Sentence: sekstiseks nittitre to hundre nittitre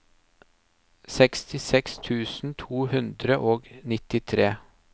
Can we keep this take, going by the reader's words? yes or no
no